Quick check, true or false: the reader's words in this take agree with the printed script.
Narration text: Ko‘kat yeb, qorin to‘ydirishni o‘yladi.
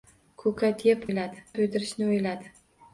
false